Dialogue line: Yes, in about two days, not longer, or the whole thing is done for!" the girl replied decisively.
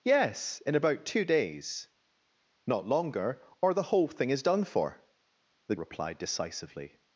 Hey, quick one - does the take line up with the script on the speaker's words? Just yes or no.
no